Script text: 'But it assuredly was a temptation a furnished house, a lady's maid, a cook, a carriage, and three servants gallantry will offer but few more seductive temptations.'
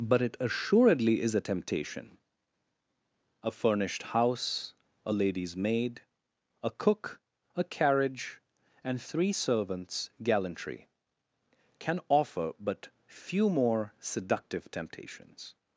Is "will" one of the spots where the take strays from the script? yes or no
yes